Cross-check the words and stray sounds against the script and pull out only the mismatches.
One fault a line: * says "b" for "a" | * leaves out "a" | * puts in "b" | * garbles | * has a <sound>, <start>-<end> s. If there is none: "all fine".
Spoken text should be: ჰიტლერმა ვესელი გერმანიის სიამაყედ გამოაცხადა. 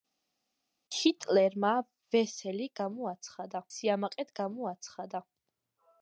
* says "გამოაცხადა" for "გერმანიის"